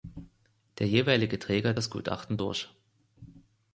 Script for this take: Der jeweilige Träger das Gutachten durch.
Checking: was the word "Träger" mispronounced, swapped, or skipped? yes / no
no